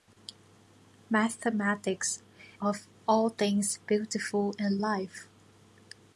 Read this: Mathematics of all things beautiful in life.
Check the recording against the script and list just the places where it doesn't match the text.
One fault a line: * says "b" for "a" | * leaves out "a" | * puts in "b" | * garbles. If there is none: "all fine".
all fine